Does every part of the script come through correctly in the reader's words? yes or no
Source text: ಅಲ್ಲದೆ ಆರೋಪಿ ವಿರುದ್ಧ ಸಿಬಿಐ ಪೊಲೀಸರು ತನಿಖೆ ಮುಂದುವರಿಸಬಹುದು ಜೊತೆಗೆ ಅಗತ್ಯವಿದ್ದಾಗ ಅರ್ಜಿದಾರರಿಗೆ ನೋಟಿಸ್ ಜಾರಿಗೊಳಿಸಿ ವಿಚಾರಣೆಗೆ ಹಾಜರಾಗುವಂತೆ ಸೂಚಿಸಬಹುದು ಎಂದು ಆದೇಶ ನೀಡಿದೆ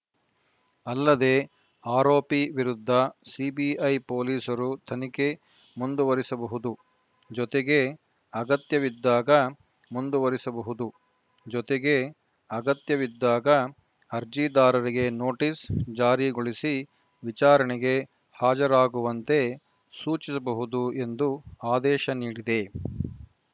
no